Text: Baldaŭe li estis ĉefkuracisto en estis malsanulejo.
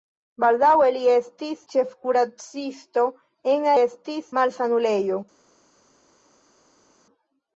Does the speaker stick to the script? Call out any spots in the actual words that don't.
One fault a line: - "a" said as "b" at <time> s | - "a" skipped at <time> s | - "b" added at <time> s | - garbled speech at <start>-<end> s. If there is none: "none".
none